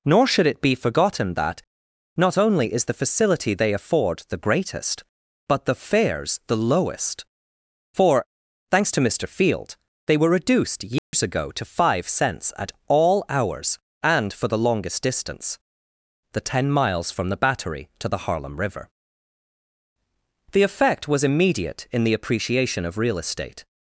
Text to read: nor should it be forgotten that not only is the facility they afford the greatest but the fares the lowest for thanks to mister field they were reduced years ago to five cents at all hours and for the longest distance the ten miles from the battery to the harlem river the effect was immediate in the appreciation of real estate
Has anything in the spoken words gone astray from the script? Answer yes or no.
no